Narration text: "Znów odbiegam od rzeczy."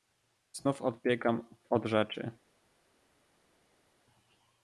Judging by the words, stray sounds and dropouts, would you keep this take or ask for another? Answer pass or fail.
pass